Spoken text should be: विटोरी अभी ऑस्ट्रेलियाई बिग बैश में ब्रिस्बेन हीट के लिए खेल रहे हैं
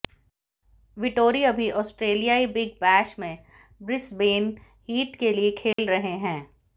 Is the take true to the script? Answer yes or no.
yes